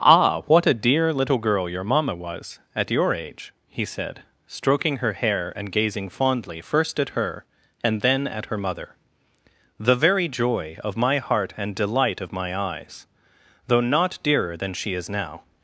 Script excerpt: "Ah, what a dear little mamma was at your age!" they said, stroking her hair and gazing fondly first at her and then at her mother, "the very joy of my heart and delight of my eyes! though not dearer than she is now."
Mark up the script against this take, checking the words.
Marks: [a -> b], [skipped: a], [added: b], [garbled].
"Ah, what a dear little [added: girl your] mamma was at your age!" [they -> he] said, stroking her hair and gazing fondly first at her and then at her mother, "the very joy of my heart and delight of my eyes! though not dearer than she is now."